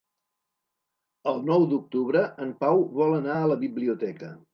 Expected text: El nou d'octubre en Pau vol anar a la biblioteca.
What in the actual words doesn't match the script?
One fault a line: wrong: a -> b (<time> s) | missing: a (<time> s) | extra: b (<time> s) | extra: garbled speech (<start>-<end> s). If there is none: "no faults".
no faults